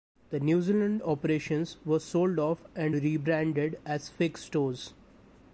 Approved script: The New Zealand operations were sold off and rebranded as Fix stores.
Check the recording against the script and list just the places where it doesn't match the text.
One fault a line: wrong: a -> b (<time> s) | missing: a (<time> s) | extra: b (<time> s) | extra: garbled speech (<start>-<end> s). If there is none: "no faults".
no faults